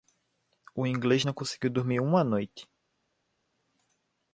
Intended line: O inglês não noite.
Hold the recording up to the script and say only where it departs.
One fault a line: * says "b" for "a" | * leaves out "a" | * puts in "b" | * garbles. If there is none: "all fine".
* puts in "conseguiu dormir uma"